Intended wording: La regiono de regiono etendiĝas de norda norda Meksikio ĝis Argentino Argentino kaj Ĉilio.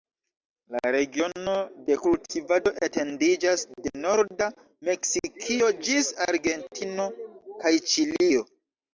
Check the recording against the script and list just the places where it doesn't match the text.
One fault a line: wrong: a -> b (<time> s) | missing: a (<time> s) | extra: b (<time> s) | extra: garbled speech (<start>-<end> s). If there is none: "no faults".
wrong: regiono -> kultivado (2.0 s)
missing: norda (4.5 s)
missing: Argentino (7.1 s)